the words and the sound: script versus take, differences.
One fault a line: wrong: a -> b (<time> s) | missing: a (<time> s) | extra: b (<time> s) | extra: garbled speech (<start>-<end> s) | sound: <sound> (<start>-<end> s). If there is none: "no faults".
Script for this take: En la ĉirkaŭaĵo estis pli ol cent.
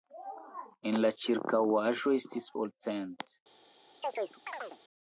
missing: pli (2.5 s)
sound: chirp (4.0-4.8 s)